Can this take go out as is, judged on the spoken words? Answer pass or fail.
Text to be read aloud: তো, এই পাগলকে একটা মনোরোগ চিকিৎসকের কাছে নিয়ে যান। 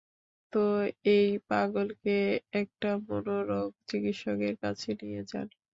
pass